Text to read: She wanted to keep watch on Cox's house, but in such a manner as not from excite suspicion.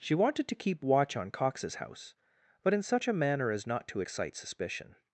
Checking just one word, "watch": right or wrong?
right